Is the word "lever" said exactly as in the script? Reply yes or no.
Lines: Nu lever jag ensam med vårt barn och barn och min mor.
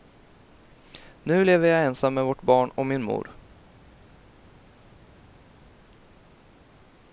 yes